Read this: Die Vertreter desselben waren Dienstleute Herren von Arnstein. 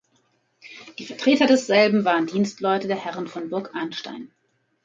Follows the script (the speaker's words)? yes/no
no